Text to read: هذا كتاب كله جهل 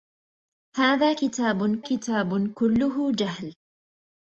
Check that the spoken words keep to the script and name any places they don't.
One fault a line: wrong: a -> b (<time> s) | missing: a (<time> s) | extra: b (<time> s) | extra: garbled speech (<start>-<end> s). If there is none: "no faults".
extra: كتاب (1.8 s)